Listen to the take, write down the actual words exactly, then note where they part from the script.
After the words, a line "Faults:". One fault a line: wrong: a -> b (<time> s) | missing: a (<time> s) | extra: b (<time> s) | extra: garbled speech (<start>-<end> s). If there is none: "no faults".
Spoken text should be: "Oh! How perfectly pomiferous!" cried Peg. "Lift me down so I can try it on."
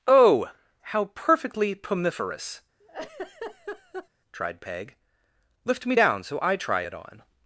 "Oh! How perfectly pomiferous!" tried Peg. "Lift me down so I try it on."
Faults:
wrong: cried -> tried (4.3 s)
missing: can (6.6 s)